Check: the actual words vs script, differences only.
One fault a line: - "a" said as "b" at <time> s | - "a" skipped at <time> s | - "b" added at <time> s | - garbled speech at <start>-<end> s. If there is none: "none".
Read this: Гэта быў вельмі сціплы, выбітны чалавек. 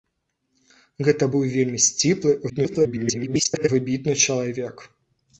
- garbled speech at 2.5-3.7 s